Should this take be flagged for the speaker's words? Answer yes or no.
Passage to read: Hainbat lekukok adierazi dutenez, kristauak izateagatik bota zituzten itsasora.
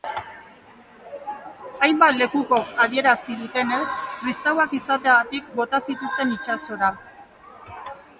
no